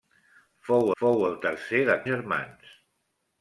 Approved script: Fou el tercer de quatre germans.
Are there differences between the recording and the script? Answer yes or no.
yes